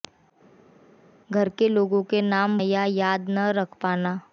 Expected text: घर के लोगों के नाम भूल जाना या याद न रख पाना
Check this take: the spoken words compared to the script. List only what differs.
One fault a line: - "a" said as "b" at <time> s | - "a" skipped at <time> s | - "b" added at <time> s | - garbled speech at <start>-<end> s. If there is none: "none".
- "भूल जाना" skipped at 2.6 s